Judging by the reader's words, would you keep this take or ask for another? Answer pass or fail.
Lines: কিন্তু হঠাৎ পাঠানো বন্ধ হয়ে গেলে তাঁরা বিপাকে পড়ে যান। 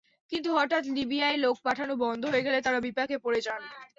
fail